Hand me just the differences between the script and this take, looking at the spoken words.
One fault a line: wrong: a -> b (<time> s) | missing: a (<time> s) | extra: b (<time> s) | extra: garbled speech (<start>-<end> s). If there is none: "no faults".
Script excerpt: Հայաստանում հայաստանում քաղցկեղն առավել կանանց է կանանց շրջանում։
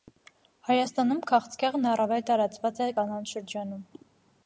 missing: հայաստանում (1.2 s)
wrong: կանանց -> տարածված (2.3 s)